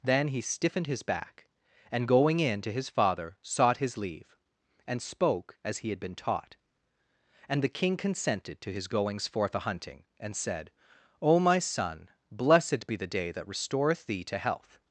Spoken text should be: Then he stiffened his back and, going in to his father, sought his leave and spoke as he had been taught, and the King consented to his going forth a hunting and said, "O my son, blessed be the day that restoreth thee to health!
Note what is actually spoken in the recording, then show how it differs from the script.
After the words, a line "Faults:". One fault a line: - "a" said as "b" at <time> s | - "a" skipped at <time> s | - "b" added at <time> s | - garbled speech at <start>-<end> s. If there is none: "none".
Then he stiffened his back and, going in to his father, sought his leave and spoke as he had been taught, and the King consented to his goings forth a hunting and said, "O my son, blessed be the day that restoreth thee to health!
Faults:
- "going" said as "goings" at 8.9 s